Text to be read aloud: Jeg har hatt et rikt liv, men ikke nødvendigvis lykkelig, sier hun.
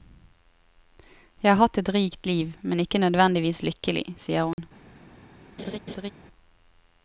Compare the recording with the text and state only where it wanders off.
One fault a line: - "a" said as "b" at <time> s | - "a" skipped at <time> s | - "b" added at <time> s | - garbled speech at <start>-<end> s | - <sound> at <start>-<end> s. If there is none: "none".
- dropout at 4.5-4.6 s
- laugh at 5.6-6.1 s